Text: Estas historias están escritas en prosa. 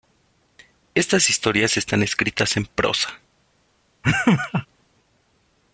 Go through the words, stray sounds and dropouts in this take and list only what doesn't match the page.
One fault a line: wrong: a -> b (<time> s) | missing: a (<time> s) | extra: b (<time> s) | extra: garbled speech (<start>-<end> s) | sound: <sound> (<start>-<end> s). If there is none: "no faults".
sound: laugh (4.0-4.7 s)